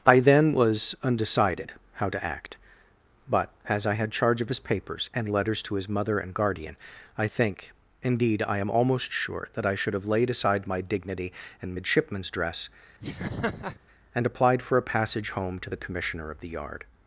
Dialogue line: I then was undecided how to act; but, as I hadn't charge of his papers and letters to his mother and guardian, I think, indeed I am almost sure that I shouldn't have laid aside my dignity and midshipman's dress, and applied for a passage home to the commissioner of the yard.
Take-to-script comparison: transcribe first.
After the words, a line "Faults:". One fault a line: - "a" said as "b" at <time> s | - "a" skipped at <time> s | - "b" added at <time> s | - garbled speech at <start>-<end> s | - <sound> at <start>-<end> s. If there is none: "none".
I then was undecided how to act; but, as I had charge of his papers and letters to his mother and guardian, I think, indeed I am almost sure that I should have laid aside my dignity and midshipman's dress, and applied for a passage home to the commissioner of the yard.
Faults:
- "hadn't" said as "had" at 3.9 s
- "shouldn't" said as "should" at 9.8 s
- laugh at 13.0-13.8 s